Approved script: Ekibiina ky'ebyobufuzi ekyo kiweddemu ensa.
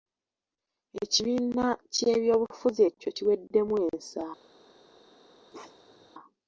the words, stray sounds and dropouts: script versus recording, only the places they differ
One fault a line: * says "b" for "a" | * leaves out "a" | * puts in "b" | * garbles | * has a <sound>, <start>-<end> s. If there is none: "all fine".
* has a bark, 5.5-6.1 s